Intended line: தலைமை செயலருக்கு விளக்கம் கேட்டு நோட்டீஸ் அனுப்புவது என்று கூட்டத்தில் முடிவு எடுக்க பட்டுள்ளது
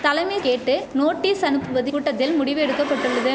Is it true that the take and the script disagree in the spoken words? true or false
true